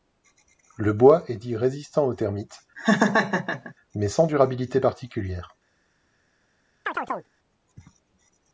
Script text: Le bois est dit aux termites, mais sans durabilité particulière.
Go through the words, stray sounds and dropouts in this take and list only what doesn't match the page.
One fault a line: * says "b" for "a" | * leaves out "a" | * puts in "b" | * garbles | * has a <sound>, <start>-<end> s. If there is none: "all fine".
* puts in "résistant"
* has a laugh, 2.8-3.7 s
* has a chirp, 6.9-7.3 s